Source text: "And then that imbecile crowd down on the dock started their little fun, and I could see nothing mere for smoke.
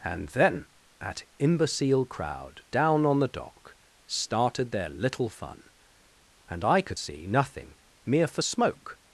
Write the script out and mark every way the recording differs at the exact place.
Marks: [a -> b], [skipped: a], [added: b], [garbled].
"And then that imbecile crowd down on the dock started their little fun, and I could see nothing mere for smoke.